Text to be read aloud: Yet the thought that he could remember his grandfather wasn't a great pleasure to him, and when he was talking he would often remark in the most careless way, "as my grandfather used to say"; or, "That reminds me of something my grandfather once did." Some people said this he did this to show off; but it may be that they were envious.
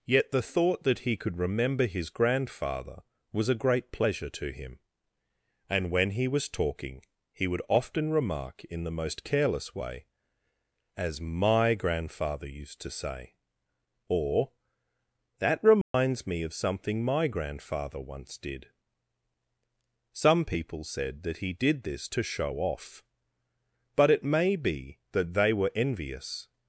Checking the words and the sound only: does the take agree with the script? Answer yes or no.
no